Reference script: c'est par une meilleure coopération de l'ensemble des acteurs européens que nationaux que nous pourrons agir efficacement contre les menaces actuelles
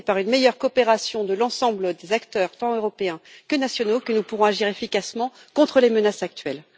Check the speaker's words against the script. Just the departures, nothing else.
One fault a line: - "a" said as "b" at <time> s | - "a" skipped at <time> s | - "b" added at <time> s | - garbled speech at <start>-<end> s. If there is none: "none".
- "tant" added at 2.6 s